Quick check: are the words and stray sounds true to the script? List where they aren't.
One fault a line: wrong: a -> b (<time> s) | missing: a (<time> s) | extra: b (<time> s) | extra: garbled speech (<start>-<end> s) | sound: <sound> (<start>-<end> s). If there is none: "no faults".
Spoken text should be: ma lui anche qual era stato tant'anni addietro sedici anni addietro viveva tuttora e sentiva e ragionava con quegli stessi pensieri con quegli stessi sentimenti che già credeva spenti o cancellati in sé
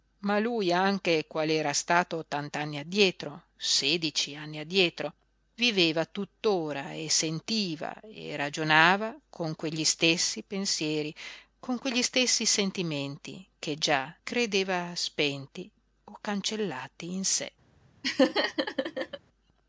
sound: laugh (18.0-19.2 s)